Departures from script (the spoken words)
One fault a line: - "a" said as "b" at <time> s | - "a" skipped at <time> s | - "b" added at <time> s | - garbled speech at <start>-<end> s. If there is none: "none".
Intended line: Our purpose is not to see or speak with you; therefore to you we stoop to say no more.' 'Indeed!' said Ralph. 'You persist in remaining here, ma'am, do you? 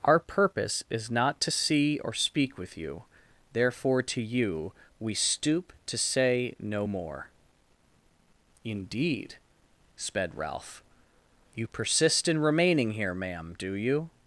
- "said" said as "sped" at 10.0 s